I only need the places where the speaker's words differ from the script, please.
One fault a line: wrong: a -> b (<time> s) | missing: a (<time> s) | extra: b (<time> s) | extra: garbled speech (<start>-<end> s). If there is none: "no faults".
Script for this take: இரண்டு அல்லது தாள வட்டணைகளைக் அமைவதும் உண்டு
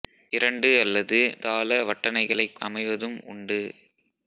no faults